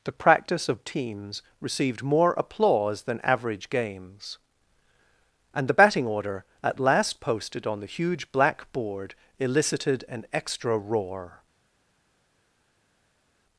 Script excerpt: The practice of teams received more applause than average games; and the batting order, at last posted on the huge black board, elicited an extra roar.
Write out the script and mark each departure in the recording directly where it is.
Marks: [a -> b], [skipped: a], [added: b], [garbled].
The practice of teams received more applause than average games; and the batting order, at last posted on the huge black board, elicited an extra roar.